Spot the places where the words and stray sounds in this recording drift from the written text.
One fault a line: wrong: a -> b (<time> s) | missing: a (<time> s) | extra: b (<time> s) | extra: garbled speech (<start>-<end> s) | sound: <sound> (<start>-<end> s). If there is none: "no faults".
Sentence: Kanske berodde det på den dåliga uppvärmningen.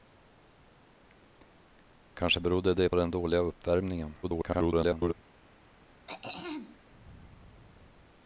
missing: på (2.9 s)
extra: garbled speech (4.2-5.1 s)
sound: throat clearing (6.1-6.8 s)